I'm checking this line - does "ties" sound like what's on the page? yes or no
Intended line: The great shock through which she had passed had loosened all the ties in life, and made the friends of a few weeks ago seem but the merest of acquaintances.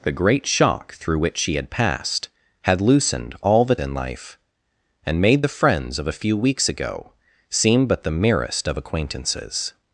no